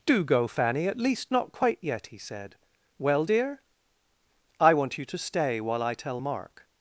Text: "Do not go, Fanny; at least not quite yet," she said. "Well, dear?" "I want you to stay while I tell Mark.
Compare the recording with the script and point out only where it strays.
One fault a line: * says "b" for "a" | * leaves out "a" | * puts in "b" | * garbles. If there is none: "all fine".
* leaves out "not"
* says "he" for "she"